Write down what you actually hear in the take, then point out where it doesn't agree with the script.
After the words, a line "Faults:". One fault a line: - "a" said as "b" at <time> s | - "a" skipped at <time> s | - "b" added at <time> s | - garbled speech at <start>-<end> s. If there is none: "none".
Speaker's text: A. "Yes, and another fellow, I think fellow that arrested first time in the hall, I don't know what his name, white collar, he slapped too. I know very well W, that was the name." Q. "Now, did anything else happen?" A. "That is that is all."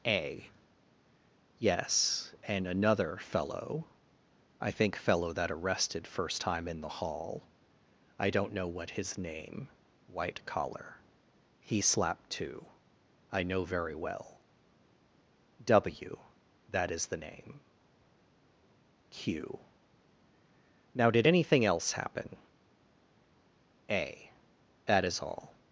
A. "Yes, and another fellow, I think fellow that arrested first time in the hall, I don't know what his name, white collar, he slapped too. I know very well W, that is the name." Q. "Now, did anything else happen?" A. "That is all."
Faults:
- "was" said as "is" at 16.9 s
- "that is" skipped at 25.2 s